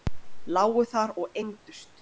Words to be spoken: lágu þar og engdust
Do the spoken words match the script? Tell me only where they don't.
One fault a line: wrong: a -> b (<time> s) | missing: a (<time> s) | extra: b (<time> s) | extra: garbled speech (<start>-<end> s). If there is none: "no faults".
no faults